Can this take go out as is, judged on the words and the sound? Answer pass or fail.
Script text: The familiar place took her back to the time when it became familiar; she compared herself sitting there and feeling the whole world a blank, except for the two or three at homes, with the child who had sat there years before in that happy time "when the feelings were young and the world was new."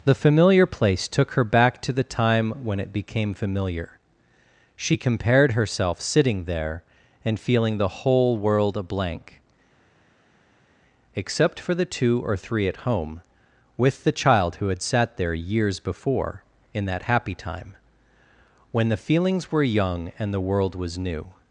fail